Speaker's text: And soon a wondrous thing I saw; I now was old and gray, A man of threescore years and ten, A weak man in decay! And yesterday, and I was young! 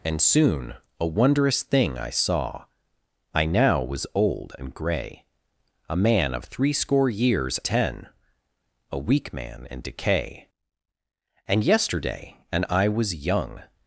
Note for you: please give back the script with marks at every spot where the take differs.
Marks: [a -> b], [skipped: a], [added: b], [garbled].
And soon a wondrous thing I saw; I now was old and gray, A man of threescore years [skipped: and] ten, A weak man in decay! And yesterday, and I was young!